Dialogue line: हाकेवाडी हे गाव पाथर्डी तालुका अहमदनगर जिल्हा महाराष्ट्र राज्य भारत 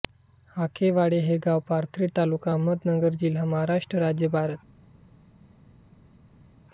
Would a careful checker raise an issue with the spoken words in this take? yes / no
no